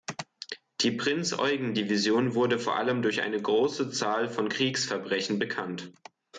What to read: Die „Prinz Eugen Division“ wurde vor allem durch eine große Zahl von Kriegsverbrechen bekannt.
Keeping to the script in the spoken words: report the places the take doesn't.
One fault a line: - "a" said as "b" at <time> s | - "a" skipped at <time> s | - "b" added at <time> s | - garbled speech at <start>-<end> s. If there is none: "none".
none